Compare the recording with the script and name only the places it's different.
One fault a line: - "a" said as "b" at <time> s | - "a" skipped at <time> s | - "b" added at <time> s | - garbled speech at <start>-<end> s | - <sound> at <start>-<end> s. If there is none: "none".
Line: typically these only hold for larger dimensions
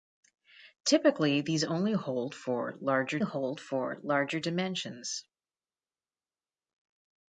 - "hold for larger" added at 3.2 s